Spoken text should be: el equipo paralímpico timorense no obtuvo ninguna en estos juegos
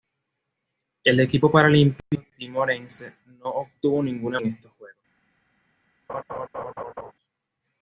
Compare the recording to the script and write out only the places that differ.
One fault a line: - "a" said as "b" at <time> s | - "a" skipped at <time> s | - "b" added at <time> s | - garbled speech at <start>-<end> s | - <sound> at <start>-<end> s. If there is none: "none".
- laugh at 6.1-7.1 s